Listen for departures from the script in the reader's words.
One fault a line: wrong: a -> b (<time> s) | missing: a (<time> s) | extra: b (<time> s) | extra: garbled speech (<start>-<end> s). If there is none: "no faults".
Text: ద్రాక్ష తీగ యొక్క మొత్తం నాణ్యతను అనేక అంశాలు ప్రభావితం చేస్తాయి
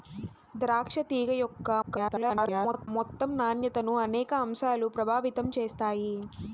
extra: garbled speech (1.8-2.9 s)